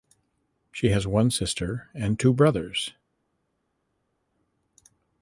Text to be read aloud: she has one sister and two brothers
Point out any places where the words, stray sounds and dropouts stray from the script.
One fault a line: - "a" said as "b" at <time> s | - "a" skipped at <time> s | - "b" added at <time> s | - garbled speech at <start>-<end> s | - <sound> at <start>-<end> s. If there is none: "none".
none